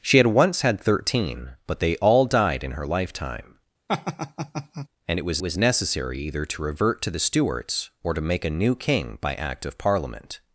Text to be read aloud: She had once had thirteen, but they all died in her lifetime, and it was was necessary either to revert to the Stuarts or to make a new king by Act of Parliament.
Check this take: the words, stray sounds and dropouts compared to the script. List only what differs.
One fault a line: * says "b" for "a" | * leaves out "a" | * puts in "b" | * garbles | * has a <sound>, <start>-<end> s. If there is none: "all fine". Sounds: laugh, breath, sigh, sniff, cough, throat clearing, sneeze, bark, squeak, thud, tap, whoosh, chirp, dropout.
* has a laugh, 3.9-4.9 s